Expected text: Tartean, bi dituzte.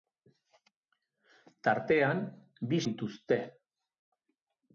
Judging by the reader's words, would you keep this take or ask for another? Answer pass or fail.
pass